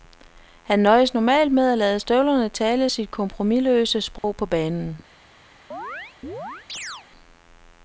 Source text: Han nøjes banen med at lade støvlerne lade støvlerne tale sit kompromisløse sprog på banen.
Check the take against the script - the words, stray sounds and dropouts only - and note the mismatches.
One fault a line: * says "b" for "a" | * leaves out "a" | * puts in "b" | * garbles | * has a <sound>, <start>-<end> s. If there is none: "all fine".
* says "normalt" for "banen"
* leaves out "lade støvlerne"
* has a dropout, 4.2-4.2 s
* has a chirp, 5.7-7.1 s